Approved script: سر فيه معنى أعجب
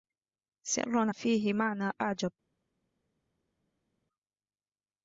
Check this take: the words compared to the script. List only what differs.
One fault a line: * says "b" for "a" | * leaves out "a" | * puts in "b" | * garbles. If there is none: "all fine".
all fine